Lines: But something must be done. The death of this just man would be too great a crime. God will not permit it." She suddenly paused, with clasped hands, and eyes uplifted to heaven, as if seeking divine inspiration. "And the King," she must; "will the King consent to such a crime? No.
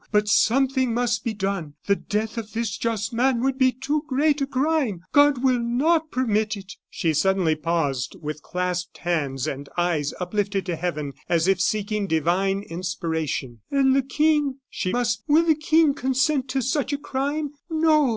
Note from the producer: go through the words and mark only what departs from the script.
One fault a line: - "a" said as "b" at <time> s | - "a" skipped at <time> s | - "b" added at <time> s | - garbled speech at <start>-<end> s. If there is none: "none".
none